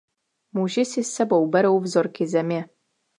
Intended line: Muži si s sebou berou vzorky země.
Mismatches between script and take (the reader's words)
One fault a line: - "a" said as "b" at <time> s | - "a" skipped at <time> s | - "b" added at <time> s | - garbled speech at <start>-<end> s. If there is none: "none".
none